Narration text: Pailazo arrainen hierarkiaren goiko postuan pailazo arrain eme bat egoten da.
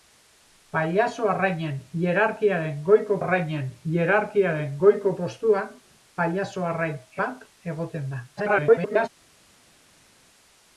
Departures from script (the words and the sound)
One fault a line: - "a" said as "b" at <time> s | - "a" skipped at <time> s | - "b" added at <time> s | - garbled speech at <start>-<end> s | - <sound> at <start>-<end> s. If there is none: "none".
- "arrainen hierarkiaren goiko" added at 3.2 s
- "eme" skipped at 7.0 s
- garbled speech at 8.4-9.1 s